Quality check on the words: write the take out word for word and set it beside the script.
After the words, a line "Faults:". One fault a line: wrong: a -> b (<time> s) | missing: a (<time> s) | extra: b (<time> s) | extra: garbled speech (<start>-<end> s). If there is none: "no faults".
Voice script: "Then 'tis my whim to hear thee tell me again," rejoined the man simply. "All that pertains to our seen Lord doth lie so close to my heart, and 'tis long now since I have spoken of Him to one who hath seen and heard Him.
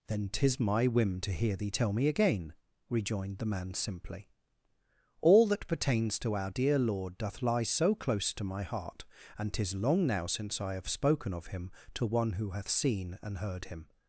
"Then 'tis my whim to hear thee tell me again," rejoined the man simply. "All that pertains to our dear Lord doth lie so close to my heart, and 'tis long now since I have spoken of Him to one who hath seen and heard Him.
Faults:
wrong: seen -> dear (6.5 s)